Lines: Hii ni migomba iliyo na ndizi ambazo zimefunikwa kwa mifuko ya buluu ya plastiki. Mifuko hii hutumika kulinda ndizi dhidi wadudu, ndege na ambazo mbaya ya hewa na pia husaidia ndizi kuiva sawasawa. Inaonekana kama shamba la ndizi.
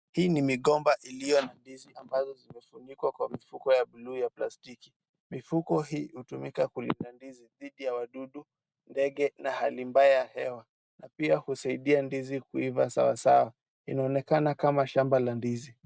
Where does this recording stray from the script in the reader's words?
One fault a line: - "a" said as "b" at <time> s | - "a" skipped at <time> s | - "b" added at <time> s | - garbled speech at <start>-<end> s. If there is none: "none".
- "ya" added at 7.8 s
- "ambazo" said as "hali" at 9.5 s